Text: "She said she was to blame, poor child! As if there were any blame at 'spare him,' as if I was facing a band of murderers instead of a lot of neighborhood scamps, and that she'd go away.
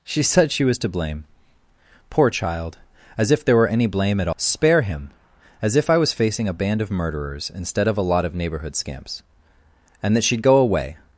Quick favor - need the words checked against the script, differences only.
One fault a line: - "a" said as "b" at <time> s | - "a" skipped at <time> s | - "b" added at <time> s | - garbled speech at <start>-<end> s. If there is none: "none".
none